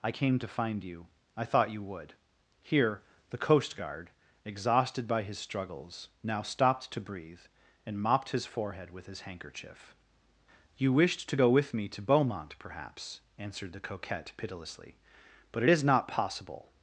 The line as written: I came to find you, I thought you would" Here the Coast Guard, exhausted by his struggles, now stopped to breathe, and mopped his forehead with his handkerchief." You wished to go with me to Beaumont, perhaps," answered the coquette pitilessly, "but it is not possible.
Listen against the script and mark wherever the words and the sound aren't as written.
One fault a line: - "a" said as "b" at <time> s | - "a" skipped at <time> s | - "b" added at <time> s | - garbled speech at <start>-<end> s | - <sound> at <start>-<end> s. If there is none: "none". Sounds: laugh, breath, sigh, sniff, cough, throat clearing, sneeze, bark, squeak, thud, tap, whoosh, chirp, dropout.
none